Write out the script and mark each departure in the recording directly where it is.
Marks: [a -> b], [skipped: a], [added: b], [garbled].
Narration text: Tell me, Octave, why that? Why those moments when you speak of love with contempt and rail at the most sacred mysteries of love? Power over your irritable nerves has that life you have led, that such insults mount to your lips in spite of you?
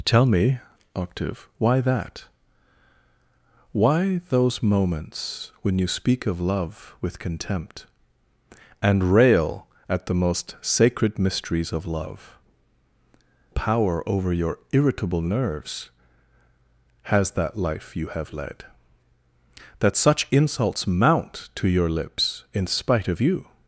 Tell me, Octave, why that? Why those moments when you speak of love with contempt and rail at the most sacred mysteries of love? Power over your irritable nerves has that life you have led, that such insults mount to your lips in spite of you?